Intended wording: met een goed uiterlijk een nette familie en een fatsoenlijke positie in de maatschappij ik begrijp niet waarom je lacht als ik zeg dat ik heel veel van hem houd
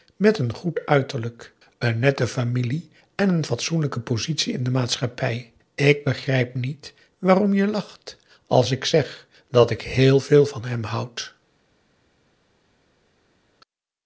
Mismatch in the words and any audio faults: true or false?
false